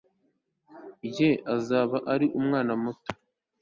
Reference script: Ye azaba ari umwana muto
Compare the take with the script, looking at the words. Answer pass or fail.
pass